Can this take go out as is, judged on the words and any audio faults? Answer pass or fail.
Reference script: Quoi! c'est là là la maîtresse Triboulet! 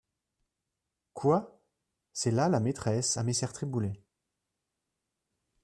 fail